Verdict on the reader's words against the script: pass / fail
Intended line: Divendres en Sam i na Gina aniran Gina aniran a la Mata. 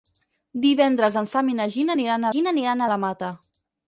pass